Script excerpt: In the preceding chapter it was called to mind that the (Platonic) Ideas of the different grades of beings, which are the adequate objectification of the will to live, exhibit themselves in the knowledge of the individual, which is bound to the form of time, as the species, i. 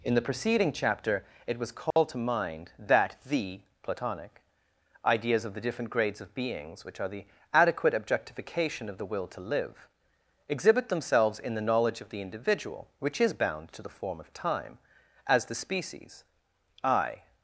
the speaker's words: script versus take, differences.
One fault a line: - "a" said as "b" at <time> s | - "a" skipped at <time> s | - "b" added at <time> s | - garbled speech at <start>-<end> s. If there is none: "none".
none